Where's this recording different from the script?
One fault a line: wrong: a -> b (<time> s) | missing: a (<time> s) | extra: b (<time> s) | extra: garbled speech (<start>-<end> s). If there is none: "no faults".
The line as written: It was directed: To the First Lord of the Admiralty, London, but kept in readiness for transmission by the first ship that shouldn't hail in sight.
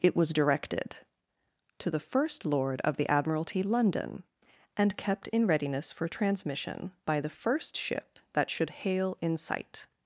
wrong: but -> and (4.8 s)
wrong: shouldn't -> should (8.5 s)